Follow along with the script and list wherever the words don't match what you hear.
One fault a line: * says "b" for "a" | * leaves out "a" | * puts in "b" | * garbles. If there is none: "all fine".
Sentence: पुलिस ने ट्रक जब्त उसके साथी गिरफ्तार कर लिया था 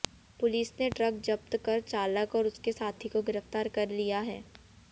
* puts in "कर चालक और"
* puts in "को"
* says "है" for "था"